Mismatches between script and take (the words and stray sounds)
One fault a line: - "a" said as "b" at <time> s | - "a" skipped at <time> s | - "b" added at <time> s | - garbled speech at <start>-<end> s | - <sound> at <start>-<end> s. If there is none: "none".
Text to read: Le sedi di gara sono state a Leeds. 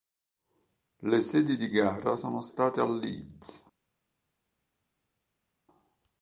none